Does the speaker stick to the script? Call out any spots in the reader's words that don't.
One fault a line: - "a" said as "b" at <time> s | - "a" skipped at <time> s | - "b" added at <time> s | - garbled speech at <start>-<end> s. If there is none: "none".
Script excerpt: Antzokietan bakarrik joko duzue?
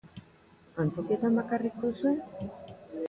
- "joko" skipped at 1.8 s